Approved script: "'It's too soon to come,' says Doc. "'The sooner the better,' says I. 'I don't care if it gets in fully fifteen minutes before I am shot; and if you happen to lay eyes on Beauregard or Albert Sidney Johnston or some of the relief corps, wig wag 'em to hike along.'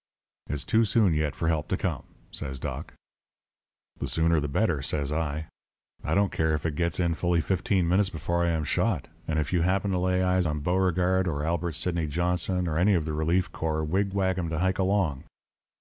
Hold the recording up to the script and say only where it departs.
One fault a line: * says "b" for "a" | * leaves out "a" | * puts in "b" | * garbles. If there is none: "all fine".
* puts in "yet for help"
* says "any" for "some"